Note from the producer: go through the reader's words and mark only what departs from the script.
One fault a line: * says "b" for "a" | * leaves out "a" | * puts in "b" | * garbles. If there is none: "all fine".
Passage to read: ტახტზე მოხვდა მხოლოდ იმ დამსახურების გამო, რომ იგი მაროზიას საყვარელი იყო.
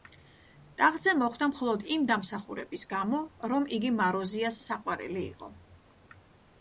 all fine